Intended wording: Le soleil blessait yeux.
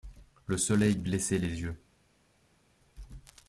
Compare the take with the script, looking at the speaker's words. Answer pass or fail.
fail